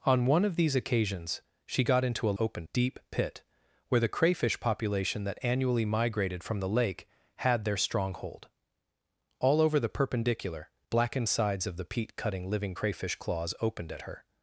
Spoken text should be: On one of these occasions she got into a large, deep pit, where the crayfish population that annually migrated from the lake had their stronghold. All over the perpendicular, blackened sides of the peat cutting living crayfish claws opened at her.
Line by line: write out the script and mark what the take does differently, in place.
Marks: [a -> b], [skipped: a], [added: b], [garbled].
On one of these occasions she got into a [large, -> opened] deep pit, where the crayfish population that annually migrated from the lake had their stronghold. All over the perpendicular, blackened sides of the peat cutting living crayfish claws opened at her.